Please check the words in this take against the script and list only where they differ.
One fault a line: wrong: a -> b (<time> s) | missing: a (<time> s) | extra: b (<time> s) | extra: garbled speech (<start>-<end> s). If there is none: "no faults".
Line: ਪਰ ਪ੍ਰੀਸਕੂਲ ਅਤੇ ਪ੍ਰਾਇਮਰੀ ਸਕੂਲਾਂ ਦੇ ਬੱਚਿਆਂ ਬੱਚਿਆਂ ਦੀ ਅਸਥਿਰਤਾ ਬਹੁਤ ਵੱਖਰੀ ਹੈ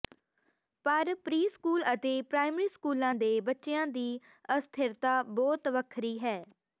missing: ਬੱਚਿਆਂ (3.8 s)